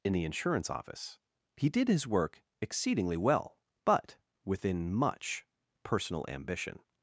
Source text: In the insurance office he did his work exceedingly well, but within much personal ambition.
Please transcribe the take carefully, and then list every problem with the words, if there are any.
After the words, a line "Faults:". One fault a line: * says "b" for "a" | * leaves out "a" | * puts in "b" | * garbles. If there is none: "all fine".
In the insurance office he did his work exceedingly well, but within much personal ambition.
Faults:
all fine